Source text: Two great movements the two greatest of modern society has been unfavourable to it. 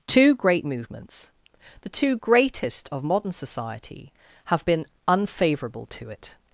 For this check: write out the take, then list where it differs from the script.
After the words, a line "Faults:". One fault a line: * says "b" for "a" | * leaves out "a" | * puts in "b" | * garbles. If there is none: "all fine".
Two great movements the two greatest of modern society have been unfavourable to it.
Faults:
* says "have" for "has"